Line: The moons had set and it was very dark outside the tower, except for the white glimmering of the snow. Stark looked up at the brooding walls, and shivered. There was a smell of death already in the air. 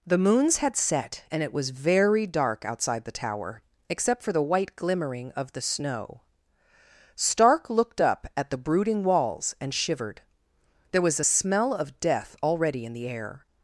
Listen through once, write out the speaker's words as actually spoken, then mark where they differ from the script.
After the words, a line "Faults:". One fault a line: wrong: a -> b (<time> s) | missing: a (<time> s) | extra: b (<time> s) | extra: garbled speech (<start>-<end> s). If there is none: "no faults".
The moons had set and it was very dark outside the tower, except for the white glimmering of the snow. Stark looked up at the brooding walls, and shivered. There was a smell of death already in the air.
Faults:
no faults